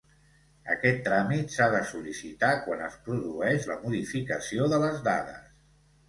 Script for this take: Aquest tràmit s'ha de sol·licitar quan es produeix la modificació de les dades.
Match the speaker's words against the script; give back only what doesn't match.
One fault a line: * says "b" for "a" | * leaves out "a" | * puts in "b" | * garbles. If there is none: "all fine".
all fine